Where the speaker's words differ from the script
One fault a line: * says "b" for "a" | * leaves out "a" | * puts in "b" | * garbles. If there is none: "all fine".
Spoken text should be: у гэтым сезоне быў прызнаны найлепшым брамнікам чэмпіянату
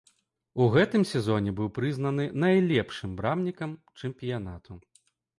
all fine